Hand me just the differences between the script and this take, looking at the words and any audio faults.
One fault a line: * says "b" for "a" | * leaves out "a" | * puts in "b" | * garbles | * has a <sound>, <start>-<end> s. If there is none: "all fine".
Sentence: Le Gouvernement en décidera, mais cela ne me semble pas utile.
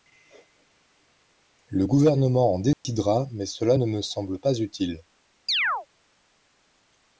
* has a dropout, 2.7-2.9 s
* has a chirp, 5.5-5.9 s